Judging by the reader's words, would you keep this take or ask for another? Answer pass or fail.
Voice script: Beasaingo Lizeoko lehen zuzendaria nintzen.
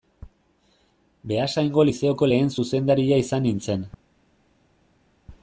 fail